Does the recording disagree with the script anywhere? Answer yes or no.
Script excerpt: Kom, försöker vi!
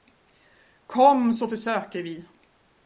yes